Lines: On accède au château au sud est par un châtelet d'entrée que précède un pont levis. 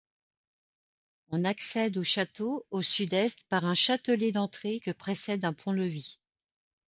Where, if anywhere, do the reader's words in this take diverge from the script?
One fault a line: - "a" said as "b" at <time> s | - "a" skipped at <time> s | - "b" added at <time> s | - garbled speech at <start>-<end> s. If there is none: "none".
none